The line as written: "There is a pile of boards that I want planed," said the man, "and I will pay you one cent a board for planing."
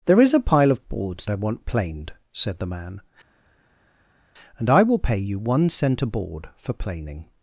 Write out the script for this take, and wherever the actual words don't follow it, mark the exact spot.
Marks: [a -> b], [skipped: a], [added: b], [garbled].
"There is a pile of boards [skipped: that] I want planed," said the man, "and I will pay you one cent a board for planing."